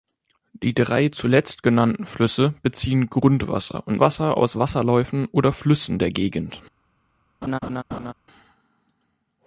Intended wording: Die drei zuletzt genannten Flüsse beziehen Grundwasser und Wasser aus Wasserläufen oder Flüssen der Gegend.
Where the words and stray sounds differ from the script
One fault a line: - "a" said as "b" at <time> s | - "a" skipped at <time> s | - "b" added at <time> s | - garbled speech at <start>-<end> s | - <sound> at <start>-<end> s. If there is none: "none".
- laugh at 7.4-8.1 s